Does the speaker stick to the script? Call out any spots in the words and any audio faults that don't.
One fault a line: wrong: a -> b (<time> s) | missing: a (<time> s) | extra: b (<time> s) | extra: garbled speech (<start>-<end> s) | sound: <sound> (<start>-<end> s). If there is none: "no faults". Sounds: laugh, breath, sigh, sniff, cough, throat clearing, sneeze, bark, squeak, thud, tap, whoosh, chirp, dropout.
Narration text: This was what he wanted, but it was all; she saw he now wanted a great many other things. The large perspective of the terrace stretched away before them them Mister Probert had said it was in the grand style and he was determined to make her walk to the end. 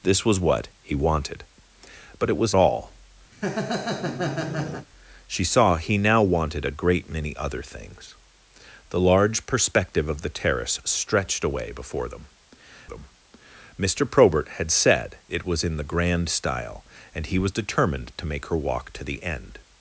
sound: laugh (3.3-4.9 s)